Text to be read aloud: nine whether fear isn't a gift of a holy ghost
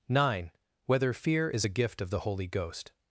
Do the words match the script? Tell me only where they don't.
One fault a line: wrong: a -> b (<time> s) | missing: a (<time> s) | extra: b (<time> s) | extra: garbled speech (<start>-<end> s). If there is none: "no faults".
wrong: isn't -> is (1.5 s)
wrong: a -> the (2.1 s)